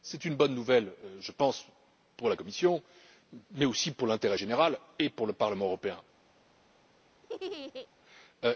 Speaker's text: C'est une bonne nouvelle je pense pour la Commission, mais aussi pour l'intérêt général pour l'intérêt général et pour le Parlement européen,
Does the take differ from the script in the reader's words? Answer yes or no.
yes